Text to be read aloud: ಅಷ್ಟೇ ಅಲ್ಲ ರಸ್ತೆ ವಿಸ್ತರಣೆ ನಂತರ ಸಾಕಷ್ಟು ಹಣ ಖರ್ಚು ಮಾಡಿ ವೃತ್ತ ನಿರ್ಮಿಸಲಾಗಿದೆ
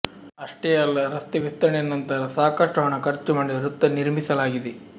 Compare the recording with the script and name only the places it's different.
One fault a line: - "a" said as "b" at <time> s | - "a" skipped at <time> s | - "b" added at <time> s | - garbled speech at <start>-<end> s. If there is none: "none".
none